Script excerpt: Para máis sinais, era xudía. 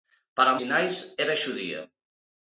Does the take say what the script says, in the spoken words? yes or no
no